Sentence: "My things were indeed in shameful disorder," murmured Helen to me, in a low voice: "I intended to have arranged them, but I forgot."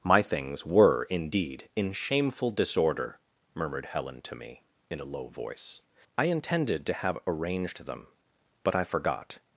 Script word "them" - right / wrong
right